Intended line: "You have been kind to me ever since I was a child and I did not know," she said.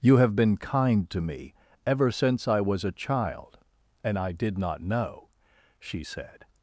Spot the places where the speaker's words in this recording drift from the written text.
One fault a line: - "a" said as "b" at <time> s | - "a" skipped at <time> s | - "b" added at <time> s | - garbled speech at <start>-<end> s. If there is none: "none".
none